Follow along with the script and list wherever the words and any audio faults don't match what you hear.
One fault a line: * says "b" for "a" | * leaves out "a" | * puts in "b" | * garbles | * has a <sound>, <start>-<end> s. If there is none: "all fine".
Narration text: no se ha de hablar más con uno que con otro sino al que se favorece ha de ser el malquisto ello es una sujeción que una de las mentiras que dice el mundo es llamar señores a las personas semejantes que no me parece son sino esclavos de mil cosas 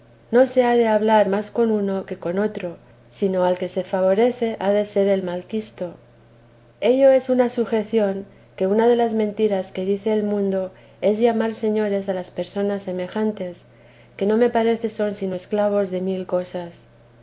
all fine